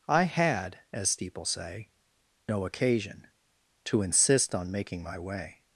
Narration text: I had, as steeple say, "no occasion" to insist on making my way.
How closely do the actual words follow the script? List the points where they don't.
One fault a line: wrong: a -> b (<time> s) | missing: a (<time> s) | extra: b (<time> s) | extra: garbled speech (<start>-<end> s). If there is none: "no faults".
no faults